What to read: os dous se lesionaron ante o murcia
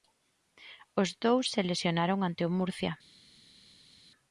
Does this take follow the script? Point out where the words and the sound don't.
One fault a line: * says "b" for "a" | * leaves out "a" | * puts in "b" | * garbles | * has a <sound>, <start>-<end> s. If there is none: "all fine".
all fine